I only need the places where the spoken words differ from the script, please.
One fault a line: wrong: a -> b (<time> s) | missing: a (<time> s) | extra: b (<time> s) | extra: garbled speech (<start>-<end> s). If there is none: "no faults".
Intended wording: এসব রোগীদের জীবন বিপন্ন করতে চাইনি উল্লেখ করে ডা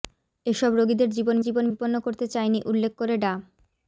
extra: জীবন (1.4 s)